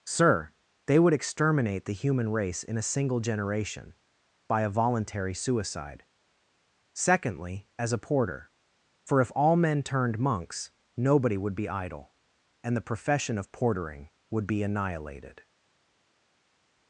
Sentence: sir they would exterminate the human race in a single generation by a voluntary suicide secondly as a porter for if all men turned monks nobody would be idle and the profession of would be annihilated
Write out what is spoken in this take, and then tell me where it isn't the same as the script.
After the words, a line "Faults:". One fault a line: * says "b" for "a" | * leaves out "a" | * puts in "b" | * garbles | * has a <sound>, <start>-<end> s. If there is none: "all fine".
sir they would exterminate the human race in a single generation by a voluntary suicide secondly as a porter for if all men turned monks nobody would be idle and the profession of portering would be annihilated
Faults:
* puts in "portering"